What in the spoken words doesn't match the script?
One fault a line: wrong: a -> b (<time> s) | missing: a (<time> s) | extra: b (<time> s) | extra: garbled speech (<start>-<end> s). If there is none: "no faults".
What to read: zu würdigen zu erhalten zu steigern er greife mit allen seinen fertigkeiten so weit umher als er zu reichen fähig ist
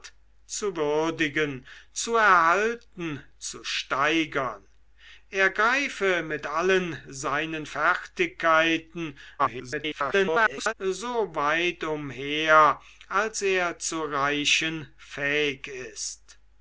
extra: garbled speech (9.4-10.7 s)